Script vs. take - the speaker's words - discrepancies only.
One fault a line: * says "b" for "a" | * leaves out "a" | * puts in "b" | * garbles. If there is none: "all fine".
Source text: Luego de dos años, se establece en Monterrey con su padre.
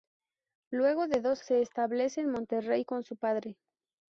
* leaves out "años"